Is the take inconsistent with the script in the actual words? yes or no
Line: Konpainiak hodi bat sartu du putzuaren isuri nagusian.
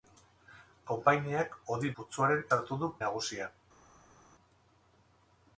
yes